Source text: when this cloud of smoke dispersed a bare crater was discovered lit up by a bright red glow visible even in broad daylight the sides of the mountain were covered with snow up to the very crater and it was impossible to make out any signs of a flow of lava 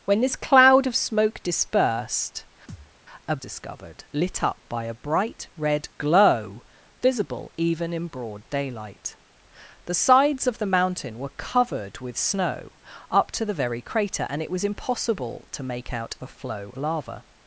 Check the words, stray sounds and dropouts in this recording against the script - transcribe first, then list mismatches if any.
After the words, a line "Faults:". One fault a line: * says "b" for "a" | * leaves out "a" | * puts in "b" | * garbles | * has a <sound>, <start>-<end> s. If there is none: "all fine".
when this cloud of smoke dispersed a discovered lit up by a bright red glow visible even in broad daylight the sides of the mountain were covered with snow up to the very crater and it was impossible to make out a flow lava
Faults:
* has a thud, 2.7-2.9 s
* leaves out "bare crater was"
* leaves out "any signs of"
* leaves out "of"